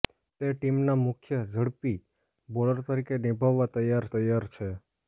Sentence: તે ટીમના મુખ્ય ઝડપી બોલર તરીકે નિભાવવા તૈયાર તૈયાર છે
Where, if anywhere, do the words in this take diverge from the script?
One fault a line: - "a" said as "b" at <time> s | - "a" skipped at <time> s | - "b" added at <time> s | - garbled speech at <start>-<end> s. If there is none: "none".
none